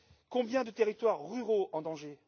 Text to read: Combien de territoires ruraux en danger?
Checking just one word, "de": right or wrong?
right